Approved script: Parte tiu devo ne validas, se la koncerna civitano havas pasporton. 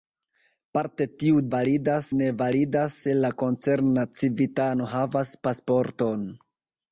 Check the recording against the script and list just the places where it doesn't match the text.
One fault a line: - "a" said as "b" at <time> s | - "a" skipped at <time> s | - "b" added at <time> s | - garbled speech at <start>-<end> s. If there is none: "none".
- "devo" said as "validas" at 1.5 s